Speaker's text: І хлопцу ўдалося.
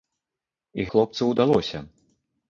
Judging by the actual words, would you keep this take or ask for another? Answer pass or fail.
pass